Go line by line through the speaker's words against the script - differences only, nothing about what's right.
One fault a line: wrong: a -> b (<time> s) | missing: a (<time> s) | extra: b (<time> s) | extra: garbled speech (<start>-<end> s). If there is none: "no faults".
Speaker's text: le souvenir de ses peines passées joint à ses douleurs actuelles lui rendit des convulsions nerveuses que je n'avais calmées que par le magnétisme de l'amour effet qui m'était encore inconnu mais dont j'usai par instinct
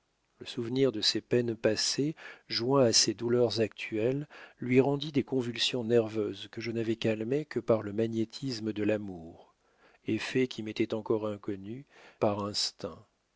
missing: mais dont j'usai (11.8 s)